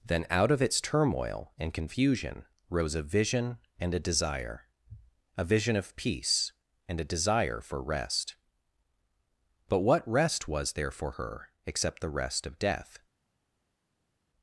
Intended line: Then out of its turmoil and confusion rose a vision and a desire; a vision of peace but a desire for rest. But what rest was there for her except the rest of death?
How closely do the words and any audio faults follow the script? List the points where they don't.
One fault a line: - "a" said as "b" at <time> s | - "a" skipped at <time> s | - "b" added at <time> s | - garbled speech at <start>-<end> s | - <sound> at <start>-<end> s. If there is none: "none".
- "but" said as "and" at 6.9 s